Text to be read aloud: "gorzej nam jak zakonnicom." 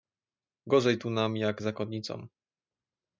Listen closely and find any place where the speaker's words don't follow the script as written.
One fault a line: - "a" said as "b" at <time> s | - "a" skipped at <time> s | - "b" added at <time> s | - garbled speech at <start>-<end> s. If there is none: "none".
- "tu" added at 1.0 s